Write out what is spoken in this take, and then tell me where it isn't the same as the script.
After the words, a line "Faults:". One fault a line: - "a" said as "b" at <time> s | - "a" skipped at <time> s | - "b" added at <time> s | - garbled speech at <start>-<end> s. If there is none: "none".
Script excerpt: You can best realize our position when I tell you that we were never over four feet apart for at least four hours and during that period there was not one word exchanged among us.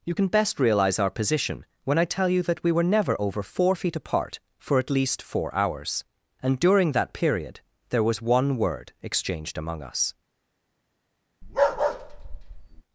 You can best realize our position when I tell you that we were never over four feet apart for at least four hours and during that period there was one word exchanged among us.
Faults:
- "not" skipped at 8.2 s